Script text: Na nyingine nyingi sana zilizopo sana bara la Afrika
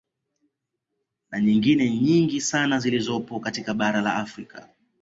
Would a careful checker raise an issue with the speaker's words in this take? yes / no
yes